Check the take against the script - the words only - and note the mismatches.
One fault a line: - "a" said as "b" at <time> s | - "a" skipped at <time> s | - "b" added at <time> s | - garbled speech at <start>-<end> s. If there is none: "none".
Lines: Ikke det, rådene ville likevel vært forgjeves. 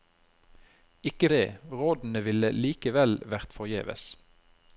none